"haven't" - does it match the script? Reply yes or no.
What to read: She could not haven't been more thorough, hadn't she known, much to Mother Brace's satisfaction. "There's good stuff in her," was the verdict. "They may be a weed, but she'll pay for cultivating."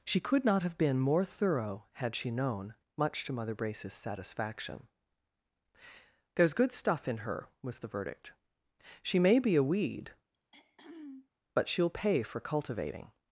no